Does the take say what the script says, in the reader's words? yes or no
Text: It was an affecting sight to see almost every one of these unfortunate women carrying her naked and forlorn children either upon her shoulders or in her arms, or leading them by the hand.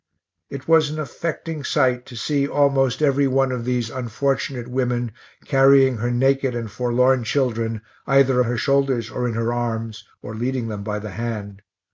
no